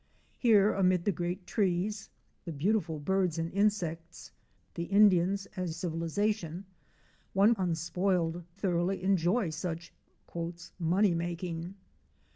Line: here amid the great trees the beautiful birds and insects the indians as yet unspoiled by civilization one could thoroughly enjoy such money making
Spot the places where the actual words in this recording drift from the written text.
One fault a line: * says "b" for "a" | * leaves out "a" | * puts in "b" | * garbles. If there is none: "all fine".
* leaves out "yet unspoiled by"
* says "unspoiled" for "could"